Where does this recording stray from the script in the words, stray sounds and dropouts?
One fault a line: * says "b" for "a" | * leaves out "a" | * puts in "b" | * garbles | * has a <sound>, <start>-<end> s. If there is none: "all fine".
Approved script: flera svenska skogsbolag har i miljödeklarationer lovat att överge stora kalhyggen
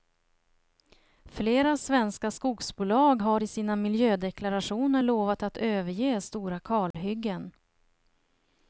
* puts in "sina"
* has a dropout, 6.9-6.9 s